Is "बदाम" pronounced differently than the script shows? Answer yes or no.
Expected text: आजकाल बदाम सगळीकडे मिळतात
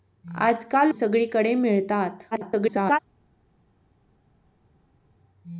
yes